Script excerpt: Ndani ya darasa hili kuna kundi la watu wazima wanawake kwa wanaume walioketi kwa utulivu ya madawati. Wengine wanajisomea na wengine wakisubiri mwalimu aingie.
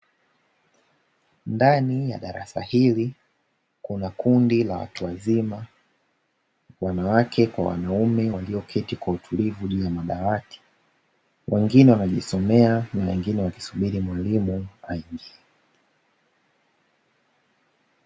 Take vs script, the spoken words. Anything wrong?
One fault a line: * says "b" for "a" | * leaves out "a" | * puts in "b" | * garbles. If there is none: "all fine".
* puts in "juu"